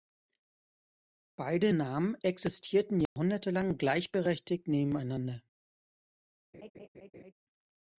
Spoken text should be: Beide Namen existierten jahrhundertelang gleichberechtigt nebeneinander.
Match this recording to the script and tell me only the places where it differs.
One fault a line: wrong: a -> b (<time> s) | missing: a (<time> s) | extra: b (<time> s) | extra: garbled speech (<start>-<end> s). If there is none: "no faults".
no faults